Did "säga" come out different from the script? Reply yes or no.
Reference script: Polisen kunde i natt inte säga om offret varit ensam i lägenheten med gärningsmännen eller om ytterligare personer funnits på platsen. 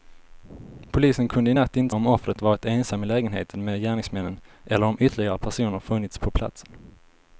yes